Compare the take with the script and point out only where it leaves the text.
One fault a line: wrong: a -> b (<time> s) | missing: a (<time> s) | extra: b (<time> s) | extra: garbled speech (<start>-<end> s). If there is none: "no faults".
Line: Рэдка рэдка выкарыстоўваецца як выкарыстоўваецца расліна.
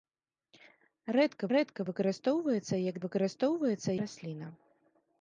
no faults